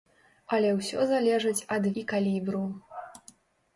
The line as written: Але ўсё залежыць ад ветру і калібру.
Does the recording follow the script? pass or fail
fail